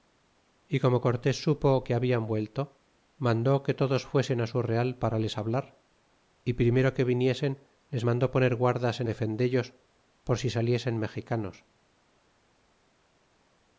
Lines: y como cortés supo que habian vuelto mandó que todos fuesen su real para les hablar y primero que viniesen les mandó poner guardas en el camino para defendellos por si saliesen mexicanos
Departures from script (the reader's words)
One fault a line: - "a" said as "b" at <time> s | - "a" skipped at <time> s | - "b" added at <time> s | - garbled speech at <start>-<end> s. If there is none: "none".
- "el camino para" skipped at 9.1 s